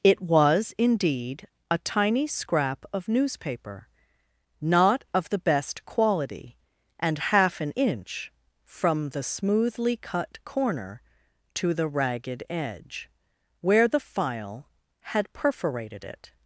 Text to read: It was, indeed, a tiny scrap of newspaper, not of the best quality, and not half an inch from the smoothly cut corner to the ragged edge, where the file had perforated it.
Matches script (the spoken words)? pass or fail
fail